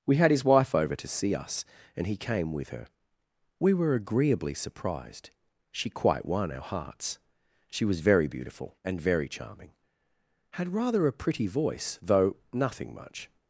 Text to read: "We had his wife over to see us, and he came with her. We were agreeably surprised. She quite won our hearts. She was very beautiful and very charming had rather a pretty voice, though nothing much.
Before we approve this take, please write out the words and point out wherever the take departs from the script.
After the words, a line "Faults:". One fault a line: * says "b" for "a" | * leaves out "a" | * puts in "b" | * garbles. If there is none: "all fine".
"We had his wife over to see us, and he came with her. We were agreeably surprised. She quite won our hearts. She was very beautiful and very charming had rather a pretty voice, though nothing much.
Faults:
all fine